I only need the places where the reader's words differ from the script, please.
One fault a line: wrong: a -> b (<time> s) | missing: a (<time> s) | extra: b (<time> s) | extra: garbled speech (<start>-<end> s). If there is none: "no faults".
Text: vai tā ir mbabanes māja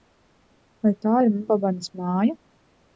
no faults